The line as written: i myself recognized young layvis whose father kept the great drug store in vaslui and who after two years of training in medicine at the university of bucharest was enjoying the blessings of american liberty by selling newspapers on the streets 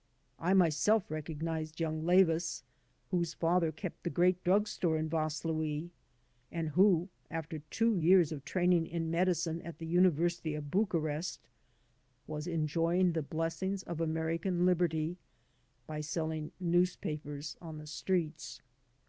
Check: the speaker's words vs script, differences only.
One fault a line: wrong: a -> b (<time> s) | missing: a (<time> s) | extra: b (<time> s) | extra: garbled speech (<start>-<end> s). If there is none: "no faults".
no faults